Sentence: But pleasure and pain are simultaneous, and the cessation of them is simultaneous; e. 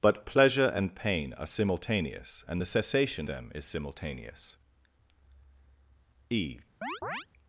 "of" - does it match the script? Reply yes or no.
no